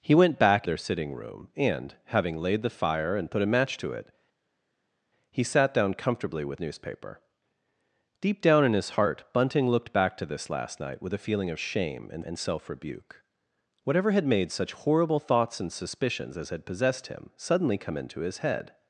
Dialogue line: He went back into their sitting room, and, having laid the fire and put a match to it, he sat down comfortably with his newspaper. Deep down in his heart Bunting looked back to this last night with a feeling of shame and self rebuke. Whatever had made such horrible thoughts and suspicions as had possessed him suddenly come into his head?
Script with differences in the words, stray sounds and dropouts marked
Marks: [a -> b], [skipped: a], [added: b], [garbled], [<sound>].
He went back [skipped: into] their sitting room, and, having laid the fire and put a match to it, he sat down comfortably with [skipped: his] newspaper. Deep down in his heart Bunting looked back to this last night with a feeling of shame and [added: and] self rebuke. Whatever had made such horrible thoughts and suspicions as had possessed him suddenly come into his head?